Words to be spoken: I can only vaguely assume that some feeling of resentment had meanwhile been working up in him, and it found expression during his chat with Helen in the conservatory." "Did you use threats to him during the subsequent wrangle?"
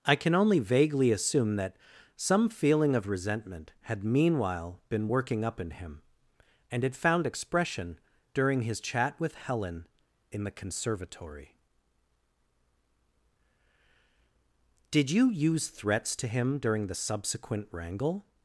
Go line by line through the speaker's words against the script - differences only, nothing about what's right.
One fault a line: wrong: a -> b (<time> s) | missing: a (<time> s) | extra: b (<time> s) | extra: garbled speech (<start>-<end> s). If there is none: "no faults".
no faults